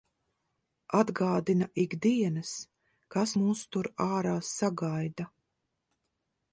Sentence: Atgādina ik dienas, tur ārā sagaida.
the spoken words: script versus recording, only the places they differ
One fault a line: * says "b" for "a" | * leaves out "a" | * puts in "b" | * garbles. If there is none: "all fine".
* puts in "kas mūs"